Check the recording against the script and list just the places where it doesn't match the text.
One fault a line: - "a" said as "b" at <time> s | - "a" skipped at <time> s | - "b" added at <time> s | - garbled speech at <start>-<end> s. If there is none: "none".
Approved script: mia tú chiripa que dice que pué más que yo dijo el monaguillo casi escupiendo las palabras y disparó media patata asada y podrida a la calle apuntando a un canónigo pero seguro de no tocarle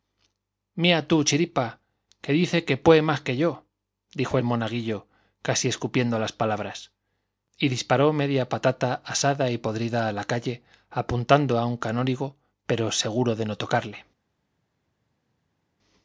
none